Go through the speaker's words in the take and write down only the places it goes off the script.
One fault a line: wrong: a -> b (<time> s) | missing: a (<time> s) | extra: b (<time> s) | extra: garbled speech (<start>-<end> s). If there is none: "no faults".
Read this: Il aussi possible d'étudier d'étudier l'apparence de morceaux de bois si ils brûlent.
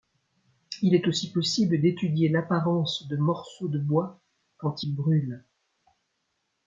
extra: est (0.9 s)
missing: d'étudier (2.3 s)
wrong: si -> quand (4.6 s)